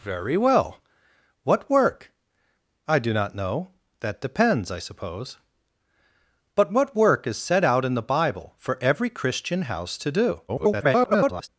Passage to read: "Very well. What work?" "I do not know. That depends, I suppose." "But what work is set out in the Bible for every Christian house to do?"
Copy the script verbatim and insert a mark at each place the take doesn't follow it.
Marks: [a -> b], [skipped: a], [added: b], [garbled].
"Very well. What work?" "I do not know. That depends, I suppose." "But what work is set out in the Bible for every Christian house to do?" [garbled]